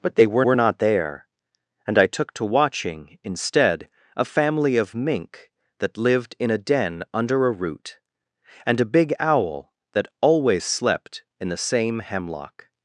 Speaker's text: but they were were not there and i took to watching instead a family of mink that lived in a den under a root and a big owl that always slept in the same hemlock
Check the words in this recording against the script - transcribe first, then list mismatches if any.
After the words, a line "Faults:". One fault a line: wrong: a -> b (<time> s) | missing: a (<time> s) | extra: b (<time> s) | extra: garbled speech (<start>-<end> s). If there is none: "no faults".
but they were were not there and i took to watching instead a family of mink that lived in a den under a root and a big owl that always slept in the same hemlock
Faults:
no faults